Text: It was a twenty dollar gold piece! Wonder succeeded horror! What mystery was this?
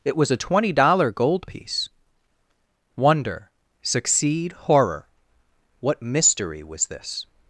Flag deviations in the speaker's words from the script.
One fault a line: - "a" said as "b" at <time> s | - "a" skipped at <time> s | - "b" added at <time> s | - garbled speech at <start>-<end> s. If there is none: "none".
- "succeeded" said as "succeed" at 3.8 s